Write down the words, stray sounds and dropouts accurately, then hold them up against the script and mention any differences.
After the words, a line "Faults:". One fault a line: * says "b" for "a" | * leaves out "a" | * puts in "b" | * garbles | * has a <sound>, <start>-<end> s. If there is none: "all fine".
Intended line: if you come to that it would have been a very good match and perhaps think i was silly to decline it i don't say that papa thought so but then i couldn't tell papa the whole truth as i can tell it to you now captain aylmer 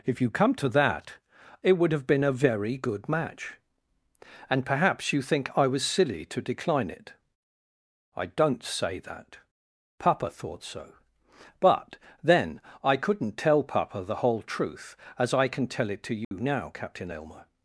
if you come to that it would have been a very good match and perhaps you think i was silly to decline it i don't say that papa thought so but then i couldn't tell papa the whole truth as i can tell it to you now captain aylmer
Faults:
* puts in "you"
* has a dropout, 16.2-16.3 s